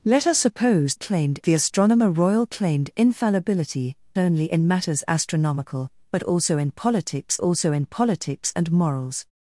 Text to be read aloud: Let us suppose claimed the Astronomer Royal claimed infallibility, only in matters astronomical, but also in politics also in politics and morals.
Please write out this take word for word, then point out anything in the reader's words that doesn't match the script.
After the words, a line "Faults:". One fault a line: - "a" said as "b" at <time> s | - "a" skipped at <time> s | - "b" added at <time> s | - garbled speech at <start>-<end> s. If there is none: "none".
Let us suppose claimed the Astronomer Royal claimed infallibility, only in matters astronomical, but also in politics also in politics and morals.
Faults:
none